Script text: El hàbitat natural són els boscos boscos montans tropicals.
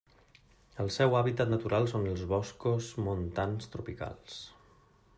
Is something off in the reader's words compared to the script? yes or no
yes